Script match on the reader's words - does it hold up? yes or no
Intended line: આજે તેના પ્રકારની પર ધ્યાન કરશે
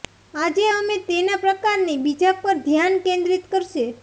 no